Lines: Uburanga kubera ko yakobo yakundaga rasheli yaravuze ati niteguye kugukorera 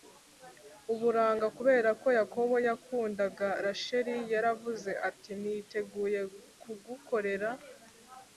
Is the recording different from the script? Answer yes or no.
no